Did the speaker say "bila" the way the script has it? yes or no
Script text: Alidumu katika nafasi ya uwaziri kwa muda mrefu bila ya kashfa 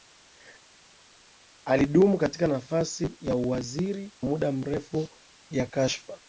no